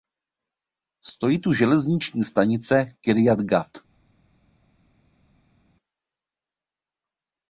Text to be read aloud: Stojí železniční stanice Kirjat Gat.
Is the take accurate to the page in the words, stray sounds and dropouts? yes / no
no